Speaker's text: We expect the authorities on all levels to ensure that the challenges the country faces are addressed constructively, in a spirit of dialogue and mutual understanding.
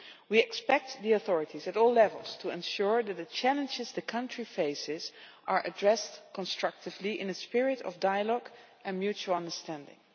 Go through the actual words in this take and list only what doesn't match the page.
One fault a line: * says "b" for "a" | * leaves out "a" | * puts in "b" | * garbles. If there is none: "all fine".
* says "at" for "on"